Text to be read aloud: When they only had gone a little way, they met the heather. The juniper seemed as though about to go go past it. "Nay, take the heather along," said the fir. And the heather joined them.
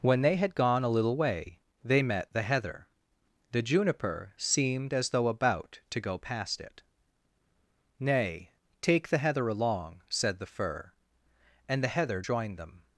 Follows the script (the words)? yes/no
no